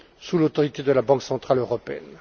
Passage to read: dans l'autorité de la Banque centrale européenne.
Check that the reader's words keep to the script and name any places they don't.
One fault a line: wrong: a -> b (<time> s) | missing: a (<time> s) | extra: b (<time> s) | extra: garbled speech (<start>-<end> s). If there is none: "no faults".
wrong: dans -> sous (0.2 s)